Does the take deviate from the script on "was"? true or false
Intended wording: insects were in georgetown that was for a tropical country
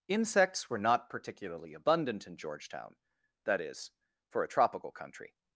true